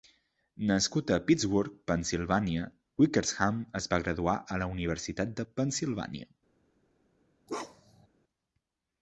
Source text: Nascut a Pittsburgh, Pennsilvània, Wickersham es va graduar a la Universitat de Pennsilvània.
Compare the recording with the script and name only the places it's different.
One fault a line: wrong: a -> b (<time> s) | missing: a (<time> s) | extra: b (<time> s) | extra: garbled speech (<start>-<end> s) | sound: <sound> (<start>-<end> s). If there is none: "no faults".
sound: bark (7.5-8.1 s)